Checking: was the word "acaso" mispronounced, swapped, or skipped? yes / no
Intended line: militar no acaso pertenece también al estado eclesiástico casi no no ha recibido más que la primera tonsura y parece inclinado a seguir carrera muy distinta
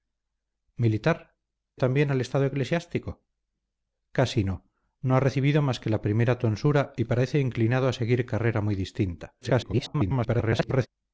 yes